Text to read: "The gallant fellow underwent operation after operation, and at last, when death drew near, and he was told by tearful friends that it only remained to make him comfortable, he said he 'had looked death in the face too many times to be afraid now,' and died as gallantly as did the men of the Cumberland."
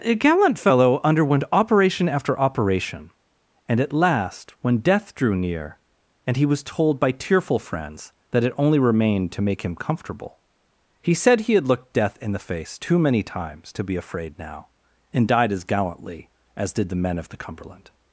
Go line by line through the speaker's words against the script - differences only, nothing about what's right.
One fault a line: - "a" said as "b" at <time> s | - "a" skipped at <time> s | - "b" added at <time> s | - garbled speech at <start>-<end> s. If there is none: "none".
- "The" said as "A" at 0.0 s